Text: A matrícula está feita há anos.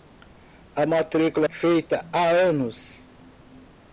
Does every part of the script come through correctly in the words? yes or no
no